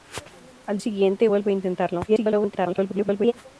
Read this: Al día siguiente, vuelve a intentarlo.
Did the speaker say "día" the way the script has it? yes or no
no